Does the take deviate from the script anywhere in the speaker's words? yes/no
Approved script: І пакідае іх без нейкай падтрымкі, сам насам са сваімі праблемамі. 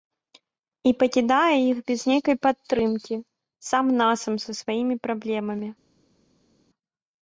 no